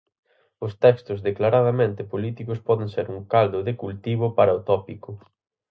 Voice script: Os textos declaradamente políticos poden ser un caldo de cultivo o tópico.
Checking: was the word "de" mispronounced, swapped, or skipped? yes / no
no